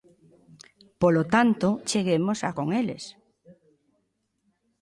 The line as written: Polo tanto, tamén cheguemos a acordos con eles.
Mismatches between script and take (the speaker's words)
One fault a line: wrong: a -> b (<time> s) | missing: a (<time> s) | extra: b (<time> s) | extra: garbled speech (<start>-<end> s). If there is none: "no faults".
missing: tamén (1.7 s)
missing: acordos (2.5 s)